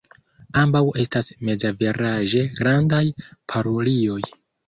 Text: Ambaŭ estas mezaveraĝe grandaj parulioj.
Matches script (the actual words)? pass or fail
pass